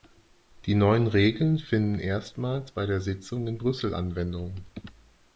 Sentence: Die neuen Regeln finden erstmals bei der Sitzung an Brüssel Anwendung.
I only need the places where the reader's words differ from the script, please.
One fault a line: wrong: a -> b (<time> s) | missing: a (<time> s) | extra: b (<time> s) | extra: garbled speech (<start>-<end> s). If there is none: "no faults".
wrong: an -> in (3.5 s)